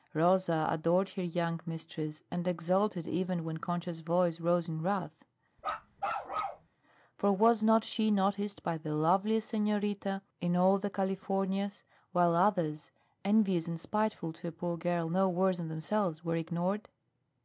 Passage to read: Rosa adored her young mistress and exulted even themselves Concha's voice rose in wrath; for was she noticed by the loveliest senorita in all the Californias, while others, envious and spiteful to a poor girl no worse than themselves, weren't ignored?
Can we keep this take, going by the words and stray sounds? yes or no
no